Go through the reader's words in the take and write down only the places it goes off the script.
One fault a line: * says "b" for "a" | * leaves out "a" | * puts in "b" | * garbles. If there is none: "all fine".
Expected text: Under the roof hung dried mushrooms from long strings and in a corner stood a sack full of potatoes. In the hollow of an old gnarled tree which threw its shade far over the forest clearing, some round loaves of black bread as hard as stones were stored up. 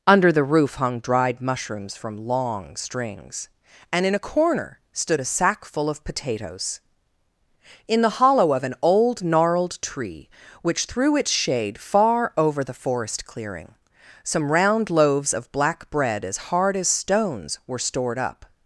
all fine